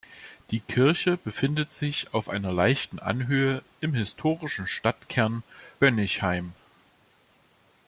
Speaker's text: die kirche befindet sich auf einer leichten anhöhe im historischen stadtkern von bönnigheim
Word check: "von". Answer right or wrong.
wrong